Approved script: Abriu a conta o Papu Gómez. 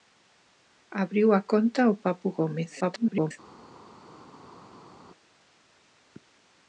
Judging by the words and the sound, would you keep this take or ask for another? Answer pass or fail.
fail